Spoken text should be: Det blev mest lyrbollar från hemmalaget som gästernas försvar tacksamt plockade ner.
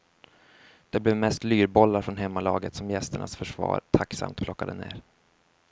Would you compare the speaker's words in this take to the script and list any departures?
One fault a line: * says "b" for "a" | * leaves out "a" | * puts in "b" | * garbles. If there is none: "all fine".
all fine